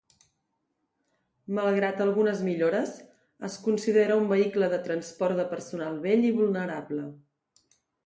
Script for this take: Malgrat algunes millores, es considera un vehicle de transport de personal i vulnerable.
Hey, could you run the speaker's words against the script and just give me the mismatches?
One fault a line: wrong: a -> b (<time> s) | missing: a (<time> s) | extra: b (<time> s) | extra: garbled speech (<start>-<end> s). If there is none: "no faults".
extra: vell (6.1 s)